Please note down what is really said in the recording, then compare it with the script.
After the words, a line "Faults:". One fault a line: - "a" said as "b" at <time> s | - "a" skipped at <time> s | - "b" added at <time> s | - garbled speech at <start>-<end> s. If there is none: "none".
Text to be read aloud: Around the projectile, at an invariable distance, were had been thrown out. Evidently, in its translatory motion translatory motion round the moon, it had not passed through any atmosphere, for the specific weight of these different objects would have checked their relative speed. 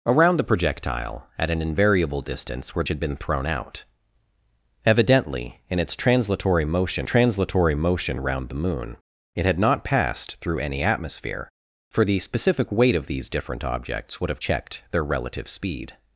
Around the projectile, at an invariable distance, were had been thrown out. Evidently, in its translatory motion translatory motion round the moon, it had not passed through any atmosphere, for the specific weight of these different objects would have checked their relative speed.
Faults:
none